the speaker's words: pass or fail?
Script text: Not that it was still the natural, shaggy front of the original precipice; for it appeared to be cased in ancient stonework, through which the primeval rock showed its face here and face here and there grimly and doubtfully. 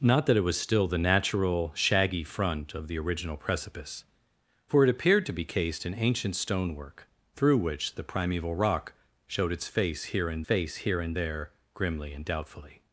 pass